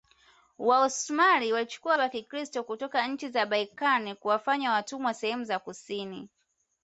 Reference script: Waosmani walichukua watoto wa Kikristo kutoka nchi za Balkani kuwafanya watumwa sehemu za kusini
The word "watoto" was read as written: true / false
false